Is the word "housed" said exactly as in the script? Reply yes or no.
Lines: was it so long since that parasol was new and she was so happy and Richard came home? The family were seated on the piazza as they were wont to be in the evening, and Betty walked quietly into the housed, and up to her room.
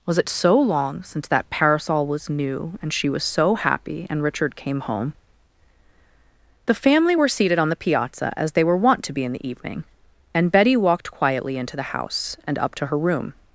no